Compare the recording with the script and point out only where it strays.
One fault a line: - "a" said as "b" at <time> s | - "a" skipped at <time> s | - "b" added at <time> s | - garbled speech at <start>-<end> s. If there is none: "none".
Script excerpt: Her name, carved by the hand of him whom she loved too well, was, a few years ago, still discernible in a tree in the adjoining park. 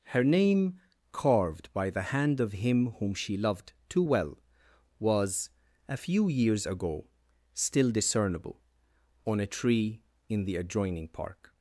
- "in" said as "on" at 9.2 s